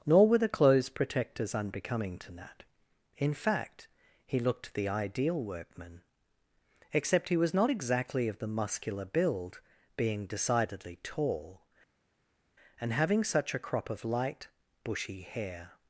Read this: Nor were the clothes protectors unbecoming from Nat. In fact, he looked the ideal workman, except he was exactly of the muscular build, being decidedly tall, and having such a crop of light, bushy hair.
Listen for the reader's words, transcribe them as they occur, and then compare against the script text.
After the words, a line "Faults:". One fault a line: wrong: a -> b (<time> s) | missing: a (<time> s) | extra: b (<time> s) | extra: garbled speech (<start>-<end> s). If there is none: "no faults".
Nor were the clothes protectors unbecoming to Nat. In fact, he looked the ideal workman, except he was not exactly of the muscular build, being decidedly tall, and having such a crop of light, bushy hair.
Faults:
wrong: from -> to (2.2 s)
extra: not (7.5 s)